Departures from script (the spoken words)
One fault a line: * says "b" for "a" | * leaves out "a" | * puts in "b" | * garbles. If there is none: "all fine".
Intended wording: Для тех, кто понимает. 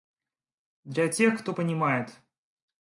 all fine